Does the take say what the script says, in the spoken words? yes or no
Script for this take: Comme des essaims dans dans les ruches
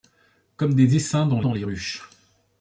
yes